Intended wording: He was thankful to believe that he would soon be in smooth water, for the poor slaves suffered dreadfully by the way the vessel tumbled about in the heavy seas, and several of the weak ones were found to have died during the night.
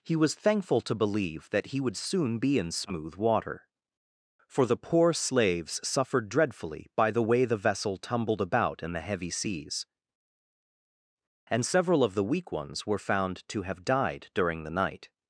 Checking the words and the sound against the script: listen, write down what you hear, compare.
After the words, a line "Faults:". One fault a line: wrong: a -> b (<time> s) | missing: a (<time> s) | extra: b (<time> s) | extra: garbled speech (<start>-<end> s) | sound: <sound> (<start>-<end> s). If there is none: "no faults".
He was thankful to believe that he would soon be in smooth water, for the poor slaves suffered dreadfully by the way the vessel tumbled about in the heavy seas, and several of the weak ones were found to have died during the night.
Faults:
no faults